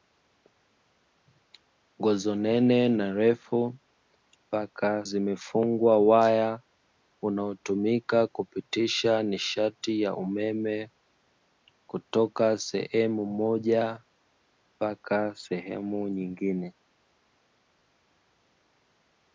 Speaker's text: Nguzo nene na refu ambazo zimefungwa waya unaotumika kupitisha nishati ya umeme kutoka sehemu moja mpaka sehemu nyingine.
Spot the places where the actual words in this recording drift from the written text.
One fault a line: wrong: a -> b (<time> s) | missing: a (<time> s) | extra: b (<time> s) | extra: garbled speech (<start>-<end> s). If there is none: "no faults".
wrong: ambazo -> mpaka (4.5 s)